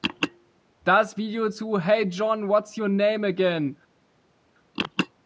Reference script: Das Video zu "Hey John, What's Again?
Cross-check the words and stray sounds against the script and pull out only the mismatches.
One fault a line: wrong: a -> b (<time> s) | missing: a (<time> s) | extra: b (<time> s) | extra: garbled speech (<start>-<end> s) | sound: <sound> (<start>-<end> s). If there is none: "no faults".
extra: Your Name (2.8 s)